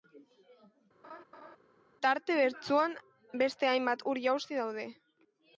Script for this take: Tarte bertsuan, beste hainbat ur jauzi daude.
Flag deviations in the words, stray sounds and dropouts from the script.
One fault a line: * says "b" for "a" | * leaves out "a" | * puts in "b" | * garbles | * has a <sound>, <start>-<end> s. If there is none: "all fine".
* has a laugh, 1.0-1.6 s